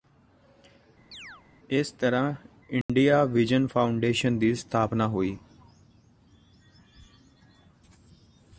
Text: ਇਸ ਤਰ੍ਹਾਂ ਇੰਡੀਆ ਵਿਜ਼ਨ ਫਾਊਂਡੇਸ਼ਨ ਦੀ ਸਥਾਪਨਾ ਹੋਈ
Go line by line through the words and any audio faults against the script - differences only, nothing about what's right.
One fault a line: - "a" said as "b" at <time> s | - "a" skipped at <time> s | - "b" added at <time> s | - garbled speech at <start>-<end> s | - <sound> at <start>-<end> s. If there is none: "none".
- chirp at 1.1-1.4 s
- dropout at 2.8-2.9 s